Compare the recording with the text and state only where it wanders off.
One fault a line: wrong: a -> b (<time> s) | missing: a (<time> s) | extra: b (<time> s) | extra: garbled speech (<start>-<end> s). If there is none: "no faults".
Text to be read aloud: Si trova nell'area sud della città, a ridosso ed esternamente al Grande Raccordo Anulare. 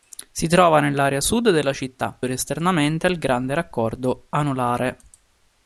missing: a ridosso (2.2 s)